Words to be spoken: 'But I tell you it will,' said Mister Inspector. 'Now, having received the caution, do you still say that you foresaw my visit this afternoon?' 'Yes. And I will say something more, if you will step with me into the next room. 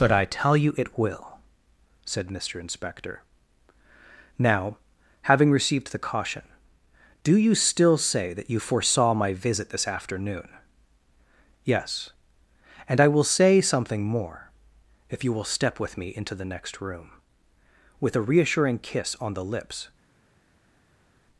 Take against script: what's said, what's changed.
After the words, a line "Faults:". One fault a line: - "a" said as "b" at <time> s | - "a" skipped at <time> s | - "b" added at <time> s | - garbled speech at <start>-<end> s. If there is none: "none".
'But I tell you it will,' said Mister Inspector. 'Now, having received the caution, do you still say that you foresaw my visit this afternoon?' 'Yes. And I will say something more, if you will step with me into the next room. With a reassuring kiss on the lips
Faults:
- "With a reassuring kiss on the lips" added at 18.0 s